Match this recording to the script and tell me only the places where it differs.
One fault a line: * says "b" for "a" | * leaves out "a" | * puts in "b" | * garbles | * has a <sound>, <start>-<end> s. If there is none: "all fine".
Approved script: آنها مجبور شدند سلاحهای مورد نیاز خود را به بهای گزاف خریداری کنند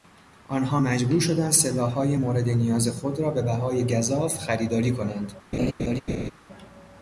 * has a laugh, 5.5-6.3 s